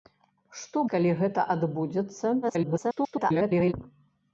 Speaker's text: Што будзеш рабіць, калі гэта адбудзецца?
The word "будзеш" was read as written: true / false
false